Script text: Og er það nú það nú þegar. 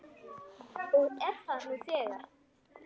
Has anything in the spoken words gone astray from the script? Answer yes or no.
yes